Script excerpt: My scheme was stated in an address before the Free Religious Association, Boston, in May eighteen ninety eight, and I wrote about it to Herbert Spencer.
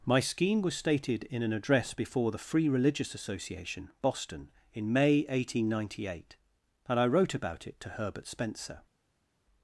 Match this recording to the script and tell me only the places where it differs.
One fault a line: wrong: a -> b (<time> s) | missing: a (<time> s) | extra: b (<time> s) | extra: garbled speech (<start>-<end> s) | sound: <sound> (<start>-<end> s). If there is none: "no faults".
no faults